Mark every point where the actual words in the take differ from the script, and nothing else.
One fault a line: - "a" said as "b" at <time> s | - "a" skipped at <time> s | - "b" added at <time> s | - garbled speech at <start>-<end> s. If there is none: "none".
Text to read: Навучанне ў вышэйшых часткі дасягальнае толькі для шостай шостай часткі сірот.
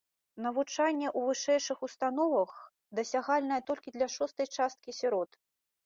- "часткі" said as "установах" at 1.9 s
- "шостай" skipped at 4.5 s